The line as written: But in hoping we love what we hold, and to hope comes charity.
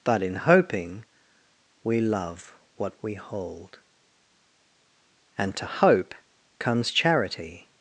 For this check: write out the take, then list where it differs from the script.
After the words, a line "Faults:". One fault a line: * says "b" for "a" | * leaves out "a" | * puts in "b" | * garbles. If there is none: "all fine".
But in hoping we love what we hold, and to hope comes charity.
Faults:
all fine